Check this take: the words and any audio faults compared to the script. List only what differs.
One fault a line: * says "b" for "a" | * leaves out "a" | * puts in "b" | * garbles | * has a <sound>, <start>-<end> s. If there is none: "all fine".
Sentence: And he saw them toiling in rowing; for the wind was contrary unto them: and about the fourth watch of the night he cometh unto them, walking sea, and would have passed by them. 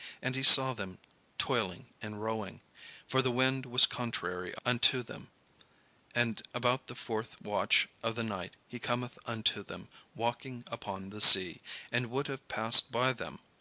* puts in "upon the"